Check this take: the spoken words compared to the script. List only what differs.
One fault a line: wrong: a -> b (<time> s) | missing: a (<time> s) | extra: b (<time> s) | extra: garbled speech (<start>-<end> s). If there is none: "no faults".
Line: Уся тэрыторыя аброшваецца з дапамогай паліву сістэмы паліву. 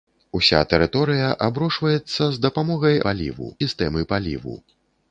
no faults